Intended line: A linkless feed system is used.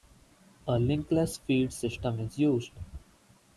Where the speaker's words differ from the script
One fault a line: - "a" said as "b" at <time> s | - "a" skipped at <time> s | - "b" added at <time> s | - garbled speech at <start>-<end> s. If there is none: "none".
none